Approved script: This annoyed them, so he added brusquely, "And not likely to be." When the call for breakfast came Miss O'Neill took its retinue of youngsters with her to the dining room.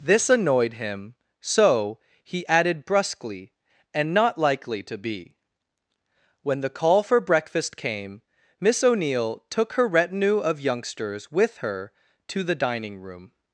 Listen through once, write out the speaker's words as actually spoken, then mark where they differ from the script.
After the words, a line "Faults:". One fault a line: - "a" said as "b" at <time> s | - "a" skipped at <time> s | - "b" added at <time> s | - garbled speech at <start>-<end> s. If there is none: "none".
This annoyed him, so he added brusquely, "And not likely to be." When the call for breakfast came Miss O'Neill took her retinue of youngsters with her to the dining room.
Faults:
- "them" said as "him" at 0.7 s
- "its" said as "her" at 9.7 s